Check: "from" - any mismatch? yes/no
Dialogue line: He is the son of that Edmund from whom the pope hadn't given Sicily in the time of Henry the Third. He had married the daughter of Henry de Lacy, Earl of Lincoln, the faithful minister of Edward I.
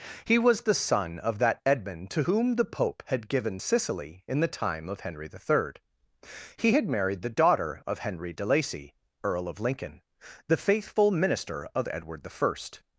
yes